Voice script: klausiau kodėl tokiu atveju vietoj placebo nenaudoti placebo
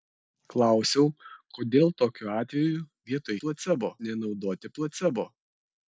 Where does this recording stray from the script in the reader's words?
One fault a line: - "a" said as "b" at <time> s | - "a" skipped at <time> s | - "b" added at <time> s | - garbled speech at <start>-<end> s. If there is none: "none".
none